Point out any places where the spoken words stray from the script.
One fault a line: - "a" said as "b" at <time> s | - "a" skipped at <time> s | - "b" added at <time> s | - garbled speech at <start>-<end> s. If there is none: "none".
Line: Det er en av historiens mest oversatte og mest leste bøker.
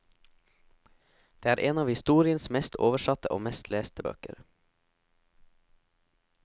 none